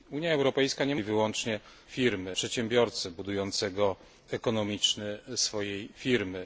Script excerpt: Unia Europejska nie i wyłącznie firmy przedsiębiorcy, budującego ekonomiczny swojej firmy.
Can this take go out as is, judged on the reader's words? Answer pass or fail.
pass